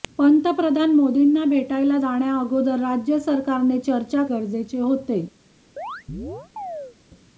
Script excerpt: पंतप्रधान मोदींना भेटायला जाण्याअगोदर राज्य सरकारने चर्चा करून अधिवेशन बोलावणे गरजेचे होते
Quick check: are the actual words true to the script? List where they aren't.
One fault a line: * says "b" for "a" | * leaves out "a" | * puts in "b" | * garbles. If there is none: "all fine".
* leaves out "करून अधिवेशन बोलावणे"